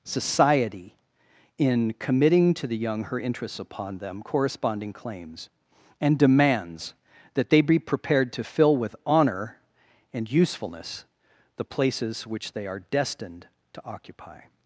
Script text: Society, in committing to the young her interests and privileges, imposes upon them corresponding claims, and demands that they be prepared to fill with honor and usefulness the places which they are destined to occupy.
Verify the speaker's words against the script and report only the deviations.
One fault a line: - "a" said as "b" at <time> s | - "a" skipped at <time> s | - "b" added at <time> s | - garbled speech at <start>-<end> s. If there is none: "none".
- "and privileges imposes" skipped at 3.6 s